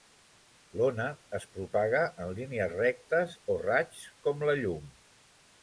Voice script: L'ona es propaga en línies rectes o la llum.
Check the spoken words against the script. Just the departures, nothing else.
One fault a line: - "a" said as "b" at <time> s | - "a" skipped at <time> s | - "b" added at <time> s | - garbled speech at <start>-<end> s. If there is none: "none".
- "raigs com" added at 3.6 s